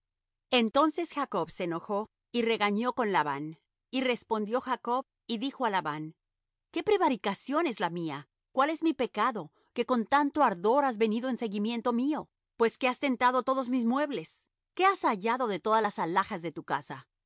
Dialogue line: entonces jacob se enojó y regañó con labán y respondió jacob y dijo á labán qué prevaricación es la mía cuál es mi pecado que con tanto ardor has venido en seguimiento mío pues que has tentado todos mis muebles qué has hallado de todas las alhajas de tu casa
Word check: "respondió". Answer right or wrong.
right